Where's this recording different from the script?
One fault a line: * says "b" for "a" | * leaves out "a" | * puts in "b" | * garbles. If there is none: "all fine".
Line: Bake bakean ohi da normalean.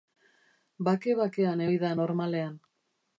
all fine